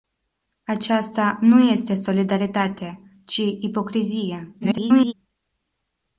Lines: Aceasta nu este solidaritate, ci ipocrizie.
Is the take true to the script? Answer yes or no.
no